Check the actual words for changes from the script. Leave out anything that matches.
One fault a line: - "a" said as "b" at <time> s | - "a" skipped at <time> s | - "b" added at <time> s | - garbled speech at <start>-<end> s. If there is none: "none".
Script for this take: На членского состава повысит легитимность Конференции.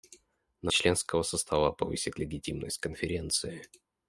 none